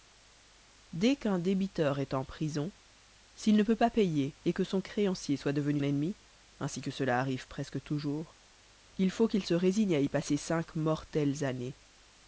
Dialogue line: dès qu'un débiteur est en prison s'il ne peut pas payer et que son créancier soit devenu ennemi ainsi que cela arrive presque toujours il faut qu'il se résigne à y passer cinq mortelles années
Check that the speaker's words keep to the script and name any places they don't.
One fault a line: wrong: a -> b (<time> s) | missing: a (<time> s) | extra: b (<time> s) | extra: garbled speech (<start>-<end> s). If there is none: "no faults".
no faults